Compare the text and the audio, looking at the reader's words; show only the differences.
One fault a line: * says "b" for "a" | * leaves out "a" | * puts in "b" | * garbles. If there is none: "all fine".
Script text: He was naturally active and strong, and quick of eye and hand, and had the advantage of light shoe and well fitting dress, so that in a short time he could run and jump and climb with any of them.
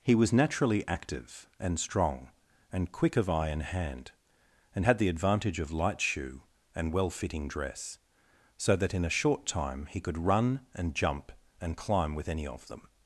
all fine